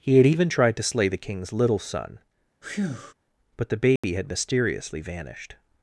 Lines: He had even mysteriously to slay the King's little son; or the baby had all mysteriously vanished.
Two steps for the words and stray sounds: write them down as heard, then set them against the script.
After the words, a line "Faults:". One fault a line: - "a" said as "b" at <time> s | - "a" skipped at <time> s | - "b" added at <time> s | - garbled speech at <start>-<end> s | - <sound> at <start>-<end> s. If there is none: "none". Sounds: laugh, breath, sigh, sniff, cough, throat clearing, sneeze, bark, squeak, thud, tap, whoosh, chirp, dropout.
He had even tried to slay the King's little son; but the baby had mysteriously vanished.
Faults:
- "mysteriously" said as "tried" at 0.5 s
- breath at 2.6-3.1 s
- "or" said as "but" at 3.6 s
- dropout at 4.0-4.0 s
- "all" skipped at 4.3 s